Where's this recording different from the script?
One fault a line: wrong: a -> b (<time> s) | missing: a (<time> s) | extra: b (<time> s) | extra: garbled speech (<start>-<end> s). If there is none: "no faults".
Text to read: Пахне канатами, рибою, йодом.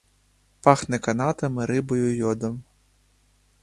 no faults